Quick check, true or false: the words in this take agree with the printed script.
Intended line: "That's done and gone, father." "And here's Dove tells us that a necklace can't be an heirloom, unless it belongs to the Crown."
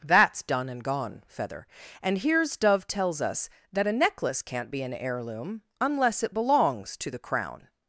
false